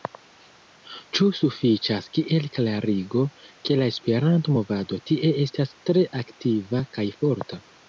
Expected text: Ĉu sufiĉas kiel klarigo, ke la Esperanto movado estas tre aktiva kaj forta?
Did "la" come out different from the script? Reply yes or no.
no